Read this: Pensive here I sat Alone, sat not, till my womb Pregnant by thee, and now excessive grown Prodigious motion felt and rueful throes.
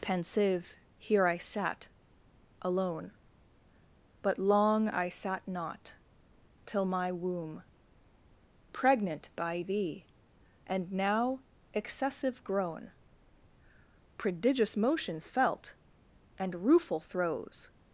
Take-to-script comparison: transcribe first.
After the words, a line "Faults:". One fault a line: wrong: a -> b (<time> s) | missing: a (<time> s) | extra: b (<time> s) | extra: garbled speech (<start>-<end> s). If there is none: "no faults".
Pensive here I sat Alone, but long I sat not, till my womb Pregnant by thee, and now excessive grown Prodigious motion felt and rueful throes.
Faults:
extra: but long I (4.2 s)